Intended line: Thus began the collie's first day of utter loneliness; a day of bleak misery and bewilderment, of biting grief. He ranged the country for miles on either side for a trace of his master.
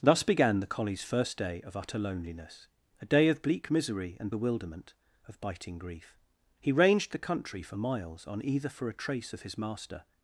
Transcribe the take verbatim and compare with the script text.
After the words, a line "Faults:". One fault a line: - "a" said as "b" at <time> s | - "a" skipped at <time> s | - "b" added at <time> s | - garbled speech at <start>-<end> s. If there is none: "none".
Thus began the collie's first day of utter loneliness; a day of bleak misery and bewilderment, of biting grief. He ranged the country for miles on either for a trace of his master.
Faults:
- "side" skipped at 8.7 s